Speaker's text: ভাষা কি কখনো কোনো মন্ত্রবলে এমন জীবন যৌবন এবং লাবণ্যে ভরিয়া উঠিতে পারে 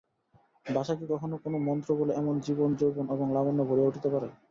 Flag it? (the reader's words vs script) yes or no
no